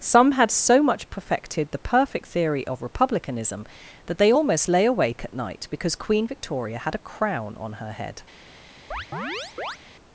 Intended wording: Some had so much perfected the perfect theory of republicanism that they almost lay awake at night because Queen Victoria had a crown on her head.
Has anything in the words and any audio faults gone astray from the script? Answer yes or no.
yes